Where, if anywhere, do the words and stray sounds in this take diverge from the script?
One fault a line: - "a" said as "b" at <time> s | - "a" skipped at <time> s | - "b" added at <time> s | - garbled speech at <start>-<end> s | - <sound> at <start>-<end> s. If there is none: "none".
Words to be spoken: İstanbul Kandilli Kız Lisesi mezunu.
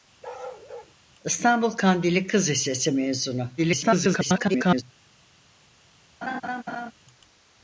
- bark at 0.2-0.9 s
- garbled speech at 3.6-4.8 s
- laugh at 6.2-6.9 s